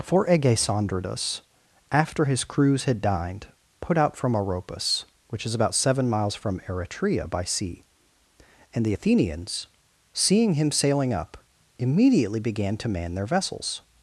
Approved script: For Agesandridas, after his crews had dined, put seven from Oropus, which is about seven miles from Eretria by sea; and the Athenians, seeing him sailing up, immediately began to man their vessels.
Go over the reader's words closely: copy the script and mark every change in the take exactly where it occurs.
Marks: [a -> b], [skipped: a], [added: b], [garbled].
For Agesandridas, after his crews had dined, put [seven -> out] from Oropus, which is about seven miles from Eretria by sea; and the Athenians, seeing him sailing up, immediately began to man their vessels.